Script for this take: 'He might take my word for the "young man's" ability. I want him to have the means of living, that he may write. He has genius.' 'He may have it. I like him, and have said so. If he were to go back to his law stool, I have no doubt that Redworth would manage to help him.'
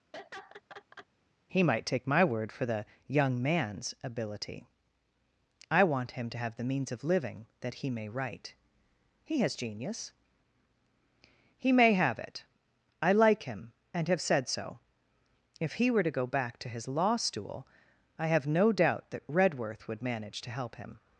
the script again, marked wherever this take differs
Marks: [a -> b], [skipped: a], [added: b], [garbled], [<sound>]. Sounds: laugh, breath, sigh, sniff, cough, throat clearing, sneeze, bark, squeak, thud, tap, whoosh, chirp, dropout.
[laugh] 'He might take my word for the "young man's" ability. I want him to have the means of living, that he may write. He has genius.' 'He may have it. I like him, and have said so. If he were to go back to his law stool, I have no doubt that Redworth would manage to help him.'